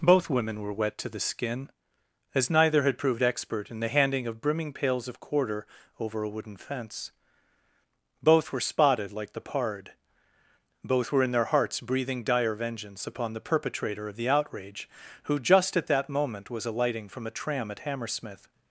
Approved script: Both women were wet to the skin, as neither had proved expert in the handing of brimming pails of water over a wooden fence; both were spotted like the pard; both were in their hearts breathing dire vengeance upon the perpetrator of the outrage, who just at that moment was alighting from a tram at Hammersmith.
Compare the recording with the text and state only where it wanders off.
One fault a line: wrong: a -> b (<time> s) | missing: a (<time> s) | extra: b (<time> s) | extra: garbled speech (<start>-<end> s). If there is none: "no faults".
wrong: water -> quarter (5.2 s)